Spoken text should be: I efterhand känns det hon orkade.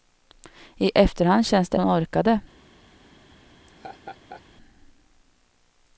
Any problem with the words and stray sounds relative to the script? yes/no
yes